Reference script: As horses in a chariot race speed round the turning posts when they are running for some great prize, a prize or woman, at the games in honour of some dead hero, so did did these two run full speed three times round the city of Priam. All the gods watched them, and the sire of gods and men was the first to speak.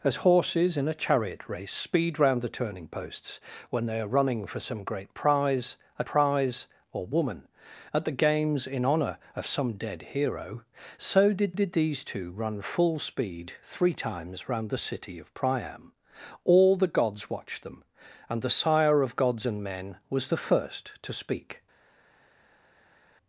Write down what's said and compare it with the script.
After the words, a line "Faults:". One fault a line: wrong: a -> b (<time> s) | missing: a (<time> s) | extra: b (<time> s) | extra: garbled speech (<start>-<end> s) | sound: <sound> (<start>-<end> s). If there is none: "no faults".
As horses in a chariot race speed round the turning posts when they are running for some great prize, a prize or woman, at the games in honour of some dead hero, so did did these two run full speed three times round the city of Priam. All the gods watched them, and the sire of gods and men was the first to speak.
Faults:
no faults